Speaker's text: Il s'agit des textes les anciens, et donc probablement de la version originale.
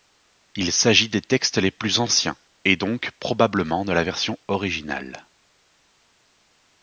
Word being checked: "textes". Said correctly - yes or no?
yes